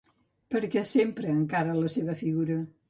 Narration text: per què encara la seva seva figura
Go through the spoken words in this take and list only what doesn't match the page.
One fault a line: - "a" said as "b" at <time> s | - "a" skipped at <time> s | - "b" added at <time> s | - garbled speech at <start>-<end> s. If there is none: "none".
- "s'empra" added at 0.9 s
- "seva" skipped at 2.2 s